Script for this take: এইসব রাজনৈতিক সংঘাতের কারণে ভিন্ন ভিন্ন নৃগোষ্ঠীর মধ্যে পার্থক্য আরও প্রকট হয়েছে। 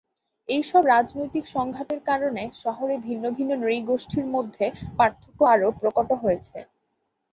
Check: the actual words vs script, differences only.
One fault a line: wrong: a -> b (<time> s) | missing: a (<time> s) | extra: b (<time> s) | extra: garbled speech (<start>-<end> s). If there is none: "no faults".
extra: শহরে (2.6 s)